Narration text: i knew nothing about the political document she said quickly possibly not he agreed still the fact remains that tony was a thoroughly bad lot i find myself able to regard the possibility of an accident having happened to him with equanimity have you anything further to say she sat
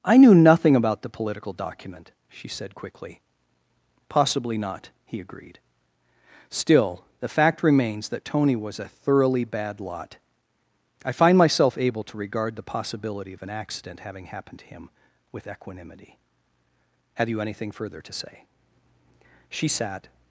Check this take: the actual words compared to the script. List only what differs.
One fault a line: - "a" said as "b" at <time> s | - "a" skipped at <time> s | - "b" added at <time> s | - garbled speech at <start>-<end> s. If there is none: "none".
none